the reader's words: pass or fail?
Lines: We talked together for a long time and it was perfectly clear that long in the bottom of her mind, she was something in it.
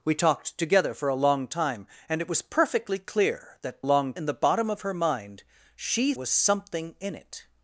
pass